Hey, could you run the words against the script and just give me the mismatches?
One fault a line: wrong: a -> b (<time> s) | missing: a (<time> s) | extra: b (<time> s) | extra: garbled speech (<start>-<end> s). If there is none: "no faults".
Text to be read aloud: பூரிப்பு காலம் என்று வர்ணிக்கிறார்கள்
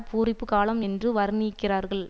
no faults